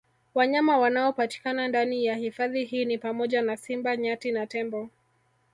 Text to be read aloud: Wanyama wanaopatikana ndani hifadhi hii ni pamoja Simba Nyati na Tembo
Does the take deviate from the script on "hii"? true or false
false